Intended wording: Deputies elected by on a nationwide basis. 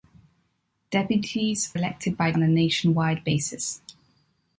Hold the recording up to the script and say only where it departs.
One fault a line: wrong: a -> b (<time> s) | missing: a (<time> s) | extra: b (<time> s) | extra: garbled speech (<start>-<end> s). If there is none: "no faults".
no faults